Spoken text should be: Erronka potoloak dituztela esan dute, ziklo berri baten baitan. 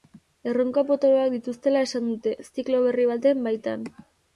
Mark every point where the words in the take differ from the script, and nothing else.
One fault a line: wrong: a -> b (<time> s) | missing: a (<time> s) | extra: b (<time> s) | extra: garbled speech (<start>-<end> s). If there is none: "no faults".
no faults